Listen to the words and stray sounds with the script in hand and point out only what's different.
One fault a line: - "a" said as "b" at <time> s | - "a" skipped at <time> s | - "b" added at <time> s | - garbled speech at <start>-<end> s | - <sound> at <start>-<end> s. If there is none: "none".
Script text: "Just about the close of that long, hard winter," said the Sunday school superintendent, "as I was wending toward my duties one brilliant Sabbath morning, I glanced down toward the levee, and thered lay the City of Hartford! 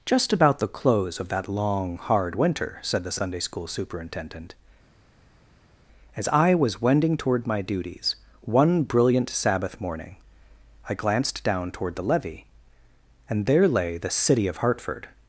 - "thered" said as "there" at 13.5 s